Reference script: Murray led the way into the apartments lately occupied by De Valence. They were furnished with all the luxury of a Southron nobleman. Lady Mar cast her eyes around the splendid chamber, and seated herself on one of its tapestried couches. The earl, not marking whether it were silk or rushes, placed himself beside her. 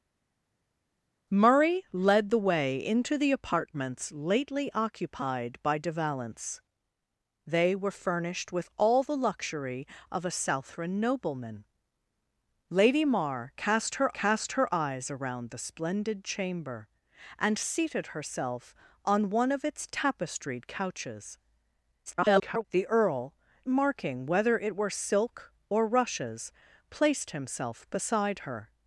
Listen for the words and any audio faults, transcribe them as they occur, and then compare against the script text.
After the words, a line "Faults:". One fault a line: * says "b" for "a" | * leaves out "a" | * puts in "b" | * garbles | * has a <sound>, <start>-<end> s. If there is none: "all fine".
Murray led the way into the apartments lately occupied by De Valence. They were furnished with all the luxury of a Southron nobleman. Lady Mar cast her cast her eyes around the splendid chamber, and seated herself on one of its tapestried couches. [garbled] The earl, marking whether it were silk or rushes, placed himself beside her.
Faults:
* puts in "cast her"
* garbles
* leaves out "not"